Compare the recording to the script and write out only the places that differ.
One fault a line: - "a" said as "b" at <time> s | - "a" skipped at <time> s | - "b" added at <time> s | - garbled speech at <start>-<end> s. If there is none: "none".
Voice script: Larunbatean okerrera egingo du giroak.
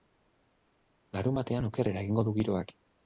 none